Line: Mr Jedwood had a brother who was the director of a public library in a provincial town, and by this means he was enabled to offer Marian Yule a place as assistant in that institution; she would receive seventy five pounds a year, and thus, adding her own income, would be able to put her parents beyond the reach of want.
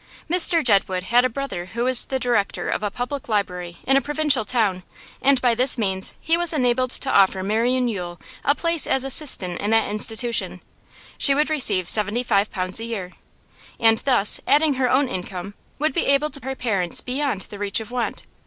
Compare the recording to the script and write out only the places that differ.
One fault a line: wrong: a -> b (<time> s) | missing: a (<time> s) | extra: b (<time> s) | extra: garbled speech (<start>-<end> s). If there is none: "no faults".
missing: put (16.4 s)